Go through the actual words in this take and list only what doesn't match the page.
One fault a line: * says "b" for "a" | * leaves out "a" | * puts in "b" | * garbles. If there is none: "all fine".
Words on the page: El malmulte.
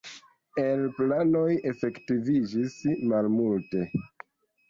* puts in "planoj efektiviĝis"